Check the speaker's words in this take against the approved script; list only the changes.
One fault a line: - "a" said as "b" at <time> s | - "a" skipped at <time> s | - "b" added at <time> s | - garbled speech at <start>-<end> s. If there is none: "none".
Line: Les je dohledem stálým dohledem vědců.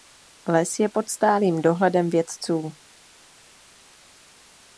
- "dohledem" said as "pod" at 0.9 s